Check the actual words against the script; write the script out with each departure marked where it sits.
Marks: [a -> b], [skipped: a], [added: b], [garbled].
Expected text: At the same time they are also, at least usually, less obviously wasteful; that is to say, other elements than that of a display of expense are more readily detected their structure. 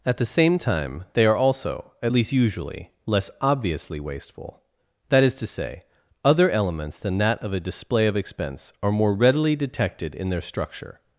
At the same time they are also, at least usually, less obviously wasteful; that is to say, other elements than that of a display of expense are more readily detected [added: in] their structure.